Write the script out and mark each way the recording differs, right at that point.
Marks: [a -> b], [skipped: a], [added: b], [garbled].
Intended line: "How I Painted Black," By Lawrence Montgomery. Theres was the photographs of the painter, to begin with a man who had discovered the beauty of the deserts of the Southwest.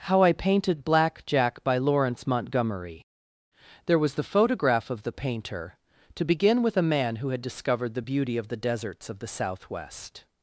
"How I Painted Black," [added: Jack] By Lawrence Montgomery. [Theres -> There] was the [photographs -> photograph] of the painter, to begin with a man who had discovered the beauty of the deserts of the Southwest.